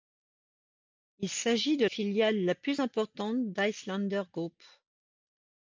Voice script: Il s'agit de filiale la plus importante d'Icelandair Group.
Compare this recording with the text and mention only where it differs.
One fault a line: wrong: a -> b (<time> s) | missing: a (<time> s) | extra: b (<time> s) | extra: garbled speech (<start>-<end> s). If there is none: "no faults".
no faults